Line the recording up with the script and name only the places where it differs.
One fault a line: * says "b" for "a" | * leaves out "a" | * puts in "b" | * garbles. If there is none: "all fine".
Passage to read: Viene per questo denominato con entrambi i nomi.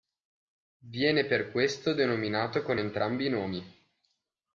all fine